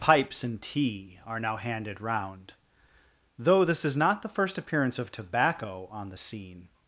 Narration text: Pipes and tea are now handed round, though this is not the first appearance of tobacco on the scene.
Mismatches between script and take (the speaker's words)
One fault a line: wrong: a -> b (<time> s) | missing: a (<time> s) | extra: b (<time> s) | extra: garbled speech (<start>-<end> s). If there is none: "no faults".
no faults